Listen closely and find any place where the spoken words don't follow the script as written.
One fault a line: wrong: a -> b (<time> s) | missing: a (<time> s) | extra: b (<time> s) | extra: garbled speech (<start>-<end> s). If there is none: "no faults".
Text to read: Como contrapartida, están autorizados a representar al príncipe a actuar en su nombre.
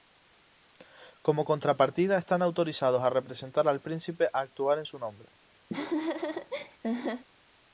no faults